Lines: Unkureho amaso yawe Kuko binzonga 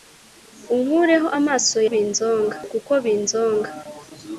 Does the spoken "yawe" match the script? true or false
false